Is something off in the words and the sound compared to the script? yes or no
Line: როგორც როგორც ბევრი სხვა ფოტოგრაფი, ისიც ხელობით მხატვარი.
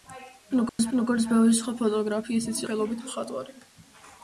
yes